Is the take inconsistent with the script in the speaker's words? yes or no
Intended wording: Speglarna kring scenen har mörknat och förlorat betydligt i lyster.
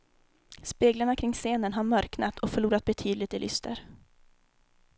no